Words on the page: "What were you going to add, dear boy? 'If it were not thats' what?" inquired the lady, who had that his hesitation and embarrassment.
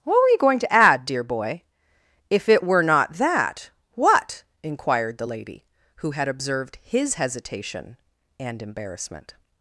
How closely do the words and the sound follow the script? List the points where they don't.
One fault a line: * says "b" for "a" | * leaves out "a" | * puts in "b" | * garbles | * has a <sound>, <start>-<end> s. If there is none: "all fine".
* says "that" for "thats"
* says "observed" for "that"